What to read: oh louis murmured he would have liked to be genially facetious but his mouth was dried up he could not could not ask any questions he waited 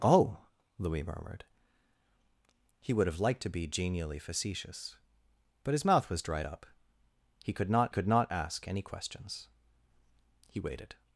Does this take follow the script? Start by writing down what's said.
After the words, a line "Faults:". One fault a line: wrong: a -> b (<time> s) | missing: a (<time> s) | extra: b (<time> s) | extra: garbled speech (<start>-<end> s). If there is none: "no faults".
oh louis murmured he would have liked to be genially facetious but his mouth was dried up he could not could not ask any questions he waited
Faults:
no faults